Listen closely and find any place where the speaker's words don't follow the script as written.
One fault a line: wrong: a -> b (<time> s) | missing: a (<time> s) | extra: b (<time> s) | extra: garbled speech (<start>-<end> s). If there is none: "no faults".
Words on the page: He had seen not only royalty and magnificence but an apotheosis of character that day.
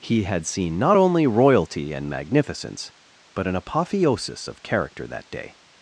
no faults